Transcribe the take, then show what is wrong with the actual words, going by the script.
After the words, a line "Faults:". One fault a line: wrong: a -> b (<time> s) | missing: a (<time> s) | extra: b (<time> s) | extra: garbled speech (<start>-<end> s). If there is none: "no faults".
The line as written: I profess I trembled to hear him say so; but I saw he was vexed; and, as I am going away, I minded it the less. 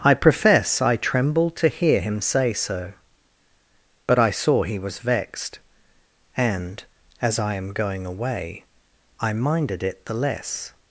I profess I trembled to hear him say so; but I saw he was vexed; and, as I am going away, I minded it the less.
Faults:
no faults